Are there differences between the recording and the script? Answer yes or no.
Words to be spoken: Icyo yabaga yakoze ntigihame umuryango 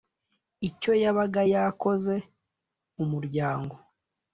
yes